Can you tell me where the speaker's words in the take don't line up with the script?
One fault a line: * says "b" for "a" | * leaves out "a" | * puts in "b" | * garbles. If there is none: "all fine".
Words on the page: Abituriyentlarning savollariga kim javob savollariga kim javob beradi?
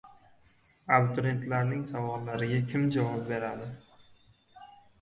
* leaves out "savollariga kim javob"